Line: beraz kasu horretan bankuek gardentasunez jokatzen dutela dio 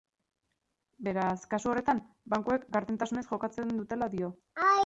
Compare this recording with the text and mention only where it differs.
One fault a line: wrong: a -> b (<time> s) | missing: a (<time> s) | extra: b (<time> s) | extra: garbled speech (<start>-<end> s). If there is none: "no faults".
no faults